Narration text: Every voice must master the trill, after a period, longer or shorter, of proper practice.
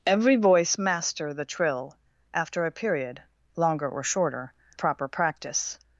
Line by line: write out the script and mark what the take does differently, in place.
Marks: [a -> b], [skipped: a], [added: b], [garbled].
Every voice [skipped: must] master the trill, after a period, longer or shorter, [skipped: of] proper practice.